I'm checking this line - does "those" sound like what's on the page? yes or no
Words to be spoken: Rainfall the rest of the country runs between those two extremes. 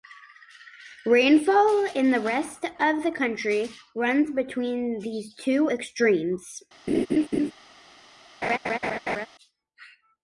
no